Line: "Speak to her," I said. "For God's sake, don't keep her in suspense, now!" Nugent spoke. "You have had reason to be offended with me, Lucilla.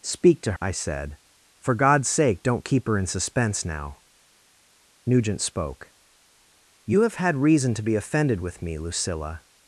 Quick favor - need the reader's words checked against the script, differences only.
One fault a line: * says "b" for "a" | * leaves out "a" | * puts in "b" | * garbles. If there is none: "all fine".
* leaves out "her"